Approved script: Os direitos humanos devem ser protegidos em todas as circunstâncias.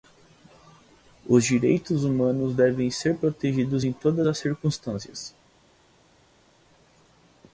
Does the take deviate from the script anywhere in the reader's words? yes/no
no